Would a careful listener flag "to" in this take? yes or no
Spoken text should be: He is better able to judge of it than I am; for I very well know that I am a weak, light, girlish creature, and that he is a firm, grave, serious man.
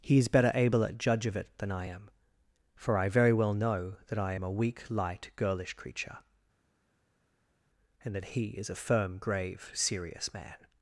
yes